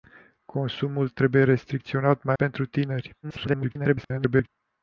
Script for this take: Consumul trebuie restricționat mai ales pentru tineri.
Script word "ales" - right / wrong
wrong